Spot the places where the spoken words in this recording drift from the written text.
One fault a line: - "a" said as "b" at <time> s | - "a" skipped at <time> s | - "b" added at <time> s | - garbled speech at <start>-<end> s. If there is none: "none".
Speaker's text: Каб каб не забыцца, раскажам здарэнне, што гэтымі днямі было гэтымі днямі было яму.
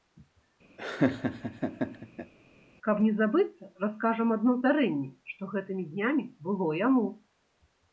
- "каб" skipped at 3.0 s
- "адно" added at 4.4 s
- "гэтымі днямі было" skipped at 6.7 s